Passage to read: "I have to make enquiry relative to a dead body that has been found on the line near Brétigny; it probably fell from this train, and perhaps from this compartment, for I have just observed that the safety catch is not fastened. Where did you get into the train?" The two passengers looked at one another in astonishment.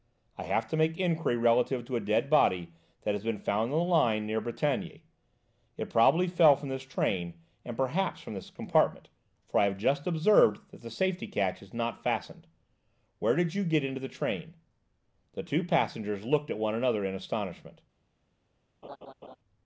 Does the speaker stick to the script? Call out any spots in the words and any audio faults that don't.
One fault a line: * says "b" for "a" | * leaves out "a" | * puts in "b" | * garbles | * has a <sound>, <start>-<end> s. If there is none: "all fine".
* has a laugh, 18.8-19.4 s